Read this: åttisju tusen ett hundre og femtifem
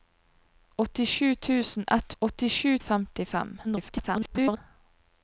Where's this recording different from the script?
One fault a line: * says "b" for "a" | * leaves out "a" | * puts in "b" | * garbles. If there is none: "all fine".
* says "åttisju" for "hundre"
* garbles